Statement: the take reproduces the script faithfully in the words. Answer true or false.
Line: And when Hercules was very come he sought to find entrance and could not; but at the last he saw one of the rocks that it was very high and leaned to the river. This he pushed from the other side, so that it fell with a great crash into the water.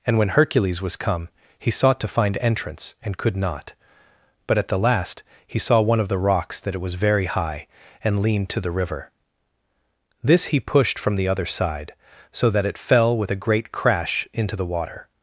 false